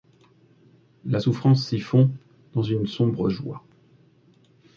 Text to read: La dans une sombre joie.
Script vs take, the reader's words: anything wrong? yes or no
yes